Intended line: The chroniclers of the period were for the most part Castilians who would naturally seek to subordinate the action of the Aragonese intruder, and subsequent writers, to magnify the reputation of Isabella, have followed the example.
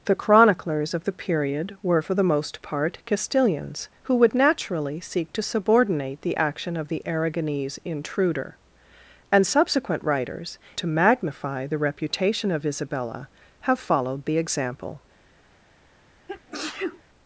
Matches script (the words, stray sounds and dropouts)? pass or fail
fail